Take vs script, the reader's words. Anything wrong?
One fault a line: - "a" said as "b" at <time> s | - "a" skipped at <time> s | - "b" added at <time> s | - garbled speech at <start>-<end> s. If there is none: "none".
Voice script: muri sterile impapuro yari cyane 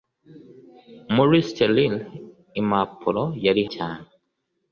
none